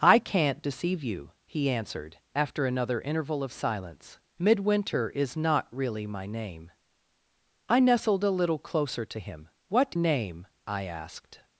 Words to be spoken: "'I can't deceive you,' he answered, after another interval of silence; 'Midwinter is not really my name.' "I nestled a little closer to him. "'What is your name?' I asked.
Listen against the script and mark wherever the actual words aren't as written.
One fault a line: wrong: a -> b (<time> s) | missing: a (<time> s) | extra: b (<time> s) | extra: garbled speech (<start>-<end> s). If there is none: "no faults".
missing: is your (9.9 s)